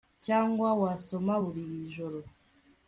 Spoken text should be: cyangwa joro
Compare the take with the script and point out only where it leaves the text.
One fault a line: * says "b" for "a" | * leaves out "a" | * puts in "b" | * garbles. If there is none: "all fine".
* puts in "wasoma buri"